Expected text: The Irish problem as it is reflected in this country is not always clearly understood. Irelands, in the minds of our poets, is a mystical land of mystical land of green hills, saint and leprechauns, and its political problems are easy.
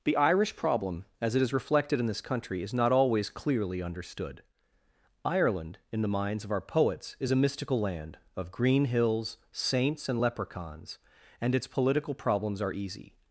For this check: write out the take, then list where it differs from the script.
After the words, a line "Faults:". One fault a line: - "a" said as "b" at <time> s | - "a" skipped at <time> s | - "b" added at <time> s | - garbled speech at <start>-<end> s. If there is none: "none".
The Irish problem as it is reflected in this country is not always clearly understood. Ireland, in the minds of our poets, is a mystical land of green hills, saints and leprechauns, and its political problems are easy.
Faults:
- "Irelands" said as "Ireland" at 5.2 s
- "mystical land of" skipped at 8.5 s
- "saint" said as "saints" at 9.5 s